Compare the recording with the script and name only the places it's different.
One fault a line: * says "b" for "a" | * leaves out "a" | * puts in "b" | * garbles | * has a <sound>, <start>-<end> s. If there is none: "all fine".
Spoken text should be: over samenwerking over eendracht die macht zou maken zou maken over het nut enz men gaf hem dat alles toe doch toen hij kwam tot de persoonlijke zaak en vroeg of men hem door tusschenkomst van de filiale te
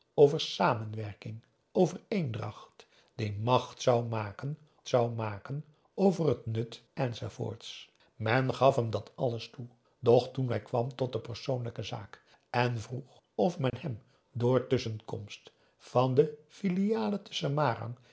* has a dropout, 13.7-13.7 s